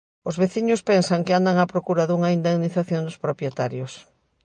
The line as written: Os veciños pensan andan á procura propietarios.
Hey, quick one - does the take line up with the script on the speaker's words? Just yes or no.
no